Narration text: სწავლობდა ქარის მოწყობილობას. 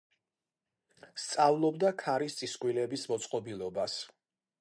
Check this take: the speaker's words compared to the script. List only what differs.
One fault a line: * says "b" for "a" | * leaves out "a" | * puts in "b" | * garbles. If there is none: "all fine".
* puts in "წისქვილების"